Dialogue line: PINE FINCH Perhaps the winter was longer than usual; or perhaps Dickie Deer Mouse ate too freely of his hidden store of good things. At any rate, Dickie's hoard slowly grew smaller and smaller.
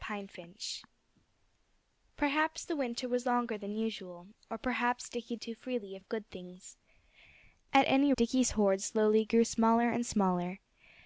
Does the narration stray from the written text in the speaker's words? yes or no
yes